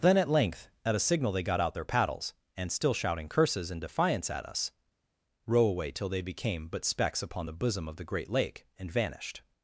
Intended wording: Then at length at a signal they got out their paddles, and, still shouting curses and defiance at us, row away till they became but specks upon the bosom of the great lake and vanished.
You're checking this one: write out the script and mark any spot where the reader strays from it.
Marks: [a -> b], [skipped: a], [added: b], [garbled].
Then at length at a signal they got out their paddles, and, still shouting curses and defiance at us, row away till they became but specks upon the bosom of the great lake and vanished.